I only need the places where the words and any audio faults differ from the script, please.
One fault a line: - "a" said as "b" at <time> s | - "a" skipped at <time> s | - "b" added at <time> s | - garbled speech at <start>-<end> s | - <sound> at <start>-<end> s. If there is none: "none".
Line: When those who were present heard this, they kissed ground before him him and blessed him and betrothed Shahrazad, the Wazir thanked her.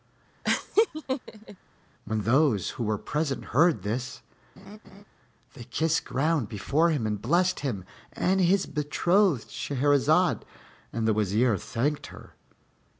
- laugh at 0.4-1.6 s
- laugh at 4.6-5.0 s
- "him" skipped at 7.1 s
- "his" added at 8.4 s
- "and" added at 10.9 s